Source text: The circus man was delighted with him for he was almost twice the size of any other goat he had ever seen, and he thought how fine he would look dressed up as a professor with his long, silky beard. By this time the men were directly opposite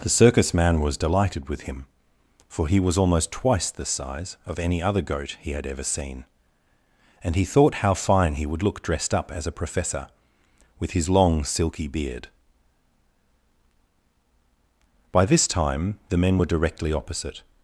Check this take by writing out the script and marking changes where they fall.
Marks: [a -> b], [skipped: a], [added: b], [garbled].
The circus man was delighted with him for he was almost twice the size of any other goat he had ever seen, and he thought how fine he would look dressed up as a professor with his long, silky beard. By this time the men were directly opposite